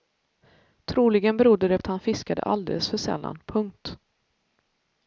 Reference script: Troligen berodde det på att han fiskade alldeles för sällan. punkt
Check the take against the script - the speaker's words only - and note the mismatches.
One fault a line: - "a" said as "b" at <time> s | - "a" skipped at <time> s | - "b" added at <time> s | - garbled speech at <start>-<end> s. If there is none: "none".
- "på" skipped at 1.8 s